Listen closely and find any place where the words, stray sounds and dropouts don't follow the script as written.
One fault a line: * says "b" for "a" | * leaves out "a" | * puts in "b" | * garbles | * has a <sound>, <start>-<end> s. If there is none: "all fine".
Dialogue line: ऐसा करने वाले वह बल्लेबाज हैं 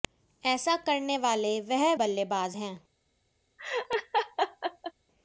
* has a laugh, 3.6-4.9 s